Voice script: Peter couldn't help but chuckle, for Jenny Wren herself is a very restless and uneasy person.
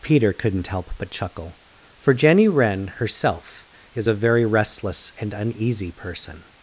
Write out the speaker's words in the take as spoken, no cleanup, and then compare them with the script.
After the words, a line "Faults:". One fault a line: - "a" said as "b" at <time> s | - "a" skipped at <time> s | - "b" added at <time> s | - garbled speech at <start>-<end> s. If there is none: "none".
Peter couldn't help but chuckle, for Jenny Wren herself is a very restless and uneasy person.
Faults:
none